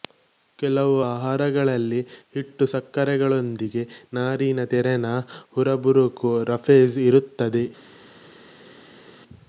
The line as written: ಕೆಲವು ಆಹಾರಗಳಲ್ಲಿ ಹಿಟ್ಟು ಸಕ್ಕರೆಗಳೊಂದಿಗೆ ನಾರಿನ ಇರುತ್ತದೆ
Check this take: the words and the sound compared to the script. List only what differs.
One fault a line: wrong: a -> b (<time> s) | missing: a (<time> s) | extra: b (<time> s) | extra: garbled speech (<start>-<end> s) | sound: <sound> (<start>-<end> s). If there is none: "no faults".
extra: ತೆರನ ಹುರಬುರಕೂ ರಫೇಜ್ (4.7 s)